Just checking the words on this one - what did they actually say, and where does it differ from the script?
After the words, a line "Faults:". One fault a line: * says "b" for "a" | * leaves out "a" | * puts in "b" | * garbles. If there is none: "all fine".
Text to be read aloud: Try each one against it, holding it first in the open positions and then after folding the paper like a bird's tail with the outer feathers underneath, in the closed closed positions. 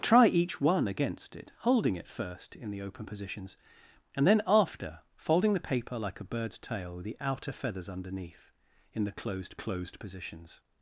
Try each one against it, holding it first in the open positions and then after folding the paper like a bird's tail with the outer feathers underneath, in the closed closed positions.
Faults:
all fine